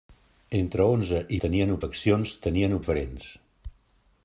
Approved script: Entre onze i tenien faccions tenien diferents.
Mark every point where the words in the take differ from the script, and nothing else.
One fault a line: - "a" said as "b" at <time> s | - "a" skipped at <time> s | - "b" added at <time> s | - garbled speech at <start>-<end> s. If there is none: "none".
none